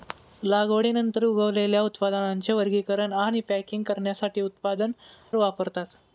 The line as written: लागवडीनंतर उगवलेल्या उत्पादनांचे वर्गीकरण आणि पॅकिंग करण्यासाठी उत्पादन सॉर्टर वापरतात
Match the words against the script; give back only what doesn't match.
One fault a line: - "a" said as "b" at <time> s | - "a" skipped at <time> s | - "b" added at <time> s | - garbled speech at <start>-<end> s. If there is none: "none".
- "सॉर्टर" skipped at 4.9 s